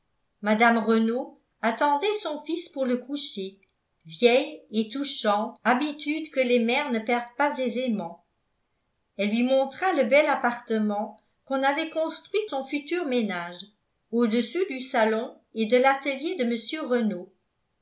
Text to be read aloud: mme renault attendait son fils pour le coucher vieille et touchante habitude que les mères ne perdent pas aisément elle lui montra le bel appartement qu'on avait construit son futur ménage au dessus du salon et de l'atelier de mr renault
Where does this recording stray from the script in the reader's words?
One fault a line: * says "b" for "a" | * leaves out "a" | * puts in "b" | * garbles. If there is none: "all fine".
all fine